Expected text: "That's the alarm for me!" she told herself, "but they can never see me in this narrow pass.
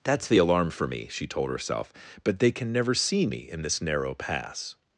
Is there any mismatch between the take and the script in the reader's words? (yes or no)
no